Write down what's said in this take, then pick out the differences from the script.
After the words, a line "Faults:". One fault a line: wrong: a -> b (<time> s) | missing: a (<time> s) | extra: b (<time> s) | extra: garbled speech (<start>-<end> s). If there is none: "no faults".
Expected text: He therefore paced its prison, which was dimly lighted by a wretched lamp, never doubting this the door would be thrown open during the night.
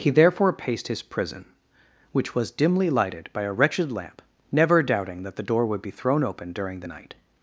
He therefore paced his prison, which was dimly lighted by a wretched lamp, never doubting that the door would be thrown open during the night.
Faults:
wrong: its -> his (0.9 s)
wrong: this -> that (5.2 s)